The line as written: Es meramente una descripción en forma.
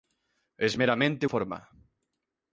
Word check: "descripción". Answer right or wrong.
wrong